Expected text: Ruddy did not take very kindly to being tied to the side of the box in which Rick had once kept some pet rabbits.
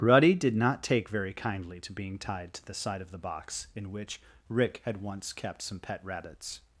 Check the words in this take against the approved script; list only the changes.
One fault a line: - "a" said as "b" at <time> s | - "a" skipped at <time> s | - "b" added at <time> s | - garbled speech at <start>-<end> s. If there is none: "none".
none